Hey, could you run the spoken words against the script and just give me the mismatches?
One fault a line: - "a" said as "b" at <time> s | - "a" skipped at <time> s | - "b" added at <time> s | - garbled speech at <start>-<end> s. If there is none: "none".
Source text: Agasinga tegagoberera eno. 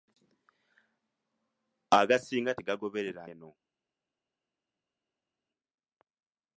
none